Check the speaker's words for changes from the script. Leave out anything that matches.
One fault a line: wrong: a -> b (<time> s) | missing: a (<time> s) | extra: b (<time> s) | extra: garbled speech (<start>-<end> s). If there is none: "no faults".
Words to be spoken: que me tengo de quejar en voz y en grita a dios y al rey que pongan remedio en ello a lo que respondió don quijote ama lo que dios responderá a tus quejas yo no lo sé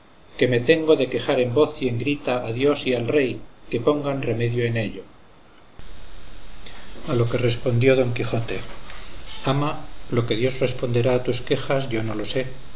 no faults